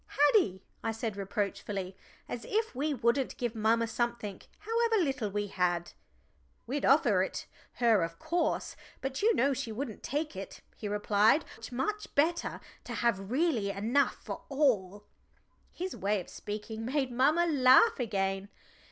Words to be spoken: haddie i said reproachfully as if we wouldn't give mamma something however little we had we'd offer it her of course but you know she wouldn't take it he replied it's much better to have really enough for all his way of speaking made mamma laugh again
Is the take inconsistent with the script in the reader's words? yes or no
no